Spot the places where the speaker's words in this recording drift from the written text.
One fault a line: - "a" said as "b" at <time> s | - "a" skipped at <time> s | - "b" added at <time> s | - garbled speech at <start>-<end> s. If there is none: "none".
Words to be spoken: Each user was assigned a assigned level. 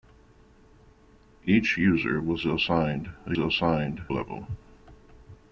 none